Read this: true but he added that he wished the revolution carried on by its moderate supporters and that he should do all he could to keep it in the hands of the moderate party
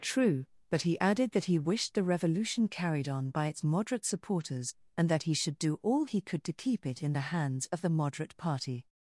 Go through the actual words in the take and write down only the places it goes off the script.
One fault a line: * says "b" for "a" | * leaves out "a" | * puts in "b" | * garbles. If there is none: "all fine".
all fine